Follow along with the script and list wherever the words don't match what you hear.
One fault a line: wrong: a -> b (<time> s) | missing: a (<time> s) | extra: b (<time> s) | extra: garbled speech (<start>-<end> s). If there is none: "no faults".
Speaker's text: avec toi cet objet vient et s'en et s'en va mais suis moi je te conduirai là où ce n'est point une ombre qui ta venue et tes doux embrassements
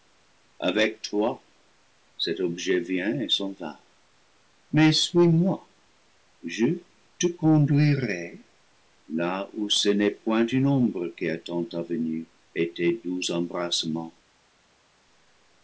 missing: et s'en (3.5 s)
extra: attend (11.3 s)